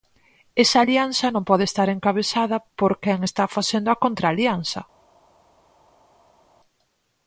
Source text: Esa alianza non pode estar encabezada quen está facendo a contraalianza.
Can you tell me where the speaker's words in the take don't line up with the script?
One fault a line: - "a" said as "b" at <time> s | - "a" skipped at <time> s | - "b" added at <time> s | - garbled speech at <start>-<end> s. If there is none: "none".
- "por" added at 2.8 s